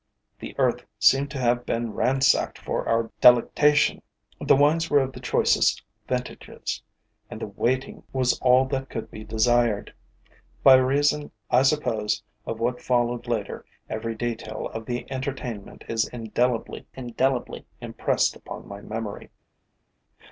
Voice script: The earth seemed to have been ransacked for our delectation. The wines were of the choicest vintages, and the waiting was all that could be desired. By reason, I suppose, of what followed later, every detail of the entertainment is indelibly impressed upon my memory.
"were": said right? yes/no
yes